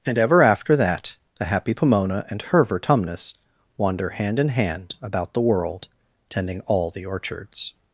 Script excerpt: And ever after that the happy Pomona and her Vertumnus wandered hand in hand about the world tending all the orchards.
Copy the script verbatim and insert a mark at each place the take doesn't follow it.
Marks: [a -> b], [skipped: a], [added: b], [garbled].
And ever after that the happy Pomona and her Vertumnus [wandered -> wander] hand in hand about the world tending all the orchards.